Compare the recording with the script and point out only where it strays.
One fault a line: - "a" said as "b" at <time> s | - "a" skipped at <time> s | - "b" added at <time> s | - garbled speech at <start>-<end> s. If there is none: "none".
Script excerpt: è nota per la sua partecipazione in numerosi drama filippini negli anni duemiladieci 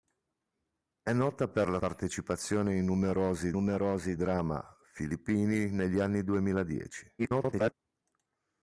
- "sua" skipped at 1.8 s
- "numerosi" added at 3.5 s
- garbled speech at 7.2-7.7 s